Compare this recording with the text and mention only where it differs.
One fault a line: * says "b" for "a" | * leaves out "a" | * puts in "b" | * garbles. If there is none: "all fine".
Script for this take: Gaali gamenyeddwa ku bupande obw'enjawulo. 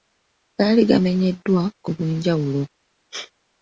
* leaves out "bupande"